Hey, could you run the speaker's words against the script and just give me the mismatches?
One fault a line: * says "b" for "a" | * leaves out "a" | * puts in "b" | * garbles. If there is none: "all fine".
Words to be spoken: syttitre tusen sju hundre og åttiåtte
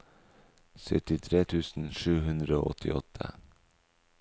all fine